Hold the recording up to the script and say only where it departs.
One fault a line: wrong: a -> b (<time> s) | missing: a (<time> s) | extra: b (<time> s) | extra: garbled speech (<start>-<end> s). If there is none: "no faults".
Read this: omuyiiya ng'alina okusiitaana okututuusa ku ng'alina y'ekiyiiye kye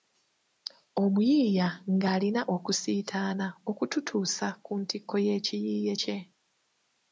wrong: ng'alina -> ntikko (4.8 s)